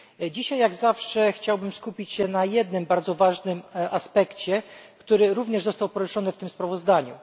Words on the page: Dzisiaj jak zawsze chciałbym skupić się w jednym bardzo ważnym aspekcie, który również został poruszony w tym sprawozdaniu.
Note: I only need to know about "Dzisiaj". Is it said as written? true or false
true